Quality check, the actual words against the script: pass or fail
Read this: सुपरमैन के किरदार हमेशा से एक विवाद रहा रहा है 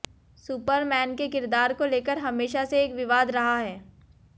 fail